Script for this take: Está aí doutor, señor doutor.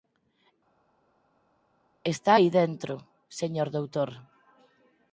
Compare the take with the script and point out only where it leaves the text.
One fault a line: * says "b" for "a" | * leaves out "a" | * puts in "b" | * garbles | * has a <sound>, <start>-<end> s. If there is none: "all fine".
* says "dentro" for "doutor"